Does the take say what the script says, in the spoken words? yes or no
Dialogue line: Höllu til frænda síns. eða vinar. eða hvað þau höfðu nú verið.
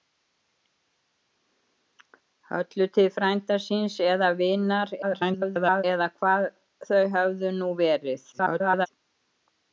no